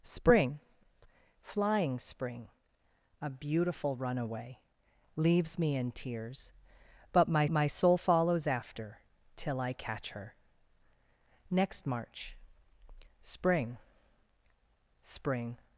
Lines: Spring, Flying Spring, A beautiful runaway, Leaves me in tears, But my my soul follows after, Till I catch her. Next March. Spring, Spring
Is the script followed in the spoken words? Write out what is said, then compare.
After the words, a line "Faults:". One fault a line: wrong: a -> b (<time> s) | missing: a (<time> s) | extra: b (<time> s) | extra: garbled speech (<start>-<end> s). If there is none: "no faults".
Spring, Flying Spring, A beautiful runaway, Leaves me in tears, But my my soul follows after, Till I catch her. Next March. Spring, Spring
Faults:
no faults